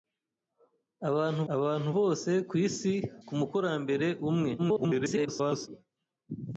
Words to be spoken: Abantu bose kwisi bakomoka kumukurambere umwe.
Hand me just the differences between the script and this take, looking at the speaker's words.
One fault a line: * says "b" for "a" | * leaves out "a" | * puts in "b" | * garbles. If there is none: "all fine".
* puts in "abantu"
* leaves out "bakomoka"
* garbles